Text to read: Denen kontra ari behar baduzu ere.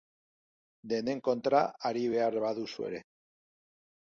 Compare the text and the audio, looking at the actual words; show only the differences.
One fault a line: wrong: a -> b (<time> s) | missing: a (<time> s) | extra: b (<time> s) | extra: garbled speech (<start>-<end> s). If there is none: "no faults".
no faults